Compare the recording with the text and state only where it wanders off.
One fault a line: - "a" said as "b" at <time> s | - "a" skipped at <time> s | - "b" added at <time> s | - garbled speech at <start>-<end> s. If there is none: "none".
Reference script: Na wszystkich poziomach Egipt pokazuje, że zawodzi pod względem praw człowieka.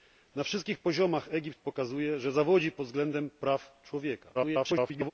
- garbled speech at 4.3-5.1 s